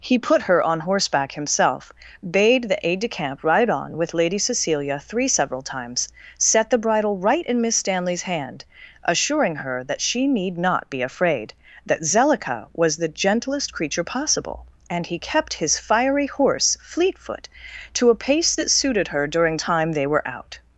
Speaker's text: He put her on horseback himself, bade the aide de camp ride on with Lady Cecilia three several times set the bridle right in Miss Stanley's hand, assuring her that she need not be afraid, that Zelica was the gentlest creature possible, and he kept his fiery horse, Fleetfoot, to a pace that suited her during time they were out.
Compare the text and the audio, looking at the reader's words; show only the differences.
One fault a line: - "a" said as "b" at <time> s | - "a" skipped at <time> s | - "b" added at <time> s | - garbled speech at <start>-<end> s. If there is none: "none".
none